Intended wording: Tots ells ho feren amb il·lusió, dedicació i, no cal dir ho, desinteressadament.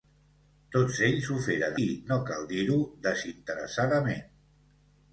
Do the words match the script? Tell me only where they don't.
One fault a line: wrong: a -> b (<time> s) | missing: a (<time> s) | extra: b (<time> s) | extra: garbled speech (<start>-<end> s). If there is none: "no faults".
missing: amb il·lusió dedicació (1.8 s)